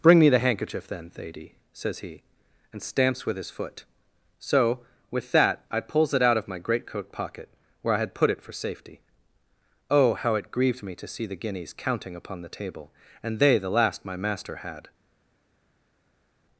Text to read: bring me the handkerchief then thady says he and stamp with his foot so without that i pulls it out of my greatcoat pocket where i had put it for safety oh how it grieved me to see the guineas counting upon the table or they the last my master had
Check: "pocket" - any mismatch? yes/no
no